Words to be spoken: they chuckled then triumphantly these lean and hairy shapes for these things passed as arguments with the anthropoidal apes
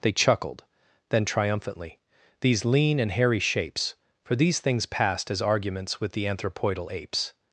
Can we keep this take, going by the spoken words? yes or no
yes